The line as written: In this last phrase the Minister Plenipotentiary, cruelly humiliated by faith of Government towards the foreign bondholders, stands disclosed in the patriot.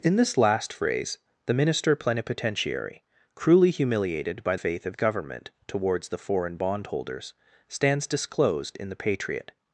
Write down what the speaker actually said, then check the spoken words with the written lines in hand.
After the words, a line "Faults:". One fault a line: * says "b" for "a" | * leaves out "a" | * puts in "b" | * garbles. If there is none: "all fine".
In this last phrase the Minister Plenipotentiary, cruelly humiliated by faith of Government towards the foreign bondholders, stands disclosed in the patriot.
Faults:
all fine